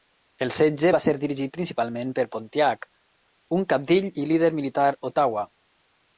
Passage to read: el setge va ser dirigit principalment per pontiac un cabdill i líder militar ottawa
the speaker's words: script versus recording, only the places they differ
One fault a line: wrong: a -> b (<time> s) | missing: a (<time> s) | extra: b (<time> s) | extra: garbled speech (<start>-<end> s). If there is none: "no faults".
no faults